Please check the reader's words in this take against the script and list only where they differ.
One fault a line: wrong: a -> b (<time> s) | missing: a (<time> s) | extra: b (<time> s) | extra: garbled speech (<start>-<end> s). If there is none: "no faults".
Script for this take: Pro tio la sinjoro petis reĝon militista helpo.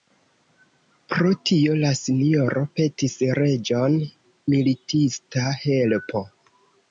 no faults